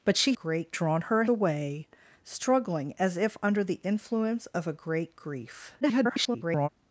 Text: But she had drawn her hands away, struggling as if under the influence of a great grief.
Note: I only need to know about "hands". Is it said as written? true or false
false